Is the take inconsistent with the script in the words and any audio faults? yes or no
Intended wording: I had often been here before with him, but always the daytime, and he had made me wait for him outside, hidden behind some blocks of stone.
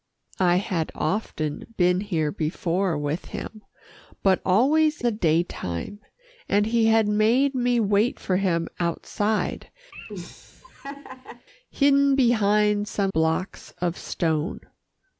yes